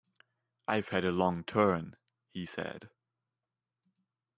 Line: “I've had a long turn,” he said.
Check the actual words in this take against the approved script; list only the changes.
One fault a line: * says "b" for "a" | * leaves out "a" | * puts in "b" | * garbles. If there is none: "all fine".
all fine